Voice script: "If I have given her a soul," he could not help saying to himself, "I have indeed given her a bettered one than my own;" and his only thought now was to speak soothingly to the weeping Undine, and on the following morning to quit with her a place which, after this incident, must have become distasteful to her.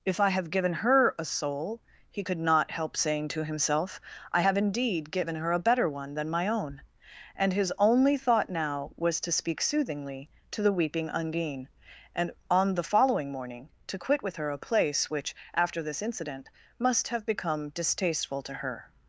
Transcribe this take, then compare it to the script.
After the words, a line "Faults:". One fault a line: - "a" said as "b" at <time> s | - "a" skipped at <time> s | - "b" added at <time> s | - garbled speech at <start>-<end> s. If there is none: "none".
"If I have given her a soul," he could not help saying to himself, "I have indeed given her a better one than my own;" and his only thought now was to speak soothingly to the weeping Undine, and on the following morning to quit with her a place which, after this incident, must have become distasteful to her.
Faults:
- "bettered" said as "better" at 5.6 s